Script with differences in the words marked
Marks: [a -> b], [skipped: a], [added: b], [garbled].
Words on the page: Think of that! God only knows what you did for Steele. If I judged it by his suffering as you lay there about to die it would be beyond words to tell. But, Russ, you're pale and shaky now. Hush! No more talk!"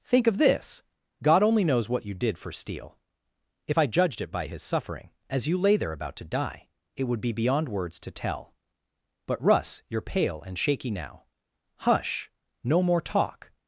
Think of [that! -> this] God only knows what you did for Steele. If I judged it by his suffering as you lay there about to die it would be beyond words to tell. But, Russ, you're pale and shaky now. Hush! No more talk!"